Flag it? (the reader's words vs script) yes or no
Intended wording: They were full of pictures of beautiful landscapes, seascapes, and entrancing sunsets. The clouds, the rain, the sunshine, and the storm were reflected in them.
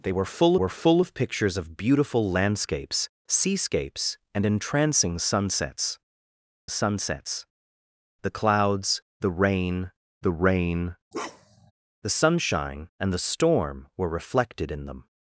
yes